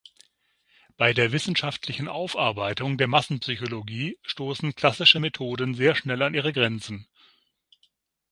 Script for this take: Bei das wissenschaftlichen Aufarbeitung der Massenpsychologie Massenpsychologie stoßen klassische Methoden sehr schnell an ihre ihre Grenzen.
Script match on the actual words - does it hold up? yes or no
no